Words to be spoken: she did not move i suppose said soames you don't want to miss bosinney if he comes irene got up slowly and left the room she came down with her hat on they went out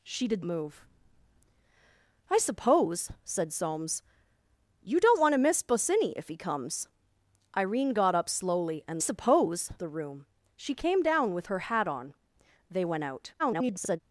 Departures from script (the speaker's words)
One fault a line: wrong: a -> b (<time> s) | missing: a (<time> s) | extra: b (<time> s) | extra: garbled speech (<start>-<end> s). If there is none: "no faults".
missing: not (0.5 s)
wrong: left -> suppose (9.0 s)
extra: garbled speech (13.4-14.0 s)